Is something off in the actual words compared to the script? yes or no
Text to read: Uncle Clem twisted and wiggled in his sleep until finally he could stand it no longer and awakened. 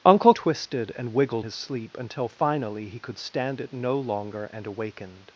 yes